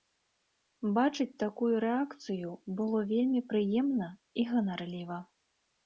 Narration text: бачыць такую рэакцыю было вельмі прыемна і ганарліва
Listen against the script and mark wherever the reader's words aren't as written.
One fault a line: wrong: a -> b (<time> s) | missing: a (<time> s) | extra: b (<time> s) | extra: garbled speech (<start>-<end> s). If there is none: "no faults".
no faults